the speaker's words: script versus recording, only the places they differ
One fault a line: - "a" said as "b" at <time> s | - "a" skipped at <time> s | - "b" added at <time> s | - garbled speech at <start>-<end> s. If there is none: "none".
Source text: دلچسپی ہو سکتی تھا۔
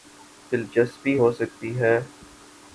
- "تھا" said as "ہے" at 1.8 s